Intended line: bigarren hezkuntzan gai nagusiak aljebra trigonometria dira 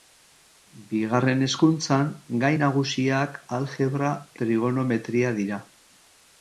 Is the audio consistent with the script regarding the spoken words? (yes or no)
yes